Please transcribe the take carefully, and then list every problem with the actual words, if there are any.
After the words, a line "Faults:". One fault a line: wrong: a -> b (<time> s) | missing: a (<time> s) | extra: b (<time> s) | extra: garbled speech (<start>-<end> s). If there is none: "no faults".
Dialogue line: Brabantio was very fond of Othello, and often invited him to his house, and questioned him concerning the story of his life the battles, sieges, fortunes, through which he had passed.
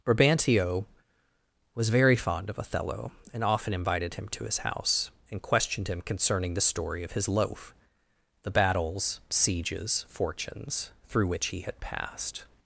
Brabantio was very fond of Othello, and often invited him to his house, and questioned him concerning the story of his loaf the battles, sieges, fortunes, through which he had passed.
Faults:
wrong: life -> loaf (7.3 s)